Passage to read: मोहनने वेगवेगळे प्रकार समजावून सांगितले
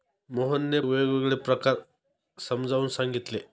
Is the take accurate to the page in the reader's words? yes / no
yes